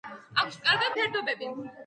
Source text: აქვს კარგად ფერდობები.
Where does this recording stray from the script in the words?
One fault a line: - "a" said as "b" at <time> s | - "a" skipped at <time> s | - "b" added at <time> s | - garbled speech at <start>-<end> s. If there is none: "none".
none